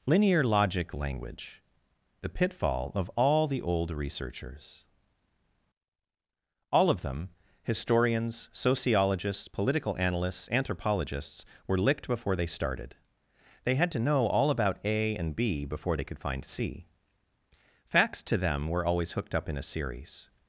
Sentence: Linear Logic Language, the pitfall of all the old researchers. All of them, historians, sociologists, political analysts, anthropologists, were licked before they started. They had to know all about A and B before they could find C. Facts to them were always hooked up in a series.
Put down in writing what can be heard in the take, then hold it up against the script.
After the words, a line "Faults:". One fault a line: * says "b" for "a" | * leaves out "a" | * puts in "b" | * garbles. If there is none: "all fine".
Linear Logic Language, the pitfall of all the old researchers. All of them, historians, sociologists, political analysts, anthropologists, were licked before they started. They had to know all about A and B before they could find C. Facts to them were always hooked up in a series.
Faults:
all fine